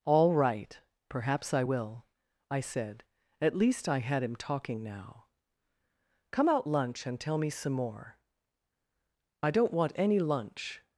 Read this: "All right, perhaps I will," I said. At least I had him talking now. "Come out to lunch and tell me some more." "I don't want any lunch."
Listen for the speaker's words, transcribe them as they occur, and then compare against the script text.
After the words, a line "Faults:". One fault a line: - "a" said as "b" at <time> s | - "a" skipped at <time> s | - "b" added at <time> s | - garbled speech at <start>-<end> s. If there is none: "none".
"All right, perhaps I will," I said. At least I had him talking now. "Come out lunch and tell me some more." "I don't want any lunch."
Faults:
- "to" skipped at 6.7 s